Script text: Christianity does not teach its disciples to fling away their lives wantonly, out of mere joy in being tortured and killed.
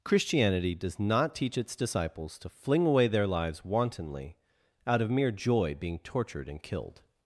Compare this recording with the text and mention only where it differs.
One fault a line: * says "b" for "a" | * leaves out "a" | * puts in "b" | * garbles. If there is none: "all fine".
* leaves out "in"